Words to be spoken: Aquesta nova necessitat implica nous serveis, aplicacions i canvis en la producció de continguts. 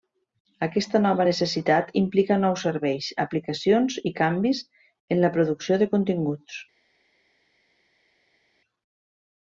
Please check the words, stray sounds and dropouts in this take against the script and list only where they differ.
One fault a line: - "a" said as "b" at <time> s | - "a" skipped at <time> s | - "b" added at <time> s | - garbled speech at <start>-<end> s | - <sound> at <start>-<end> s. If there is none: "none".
none